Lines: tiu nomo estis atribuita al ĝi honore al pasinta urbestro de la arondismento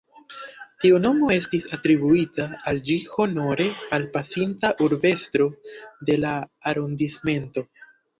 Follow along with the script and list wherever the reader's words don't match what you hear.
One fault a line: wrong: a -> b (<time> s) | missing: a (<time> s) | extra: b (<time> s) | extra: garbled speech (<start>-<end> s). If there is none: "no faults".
no faults